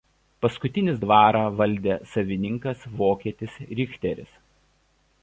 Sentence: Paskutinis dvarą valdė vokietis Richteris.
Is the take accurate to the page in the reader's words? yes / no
no